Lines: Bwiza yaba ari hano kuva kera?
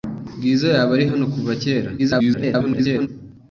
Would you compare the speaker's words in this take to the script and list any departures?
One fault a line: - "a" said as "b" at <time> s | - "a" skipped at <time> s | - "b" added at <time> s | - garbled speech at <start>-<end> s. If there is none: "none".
- garbled speech at 2.0-3.1 s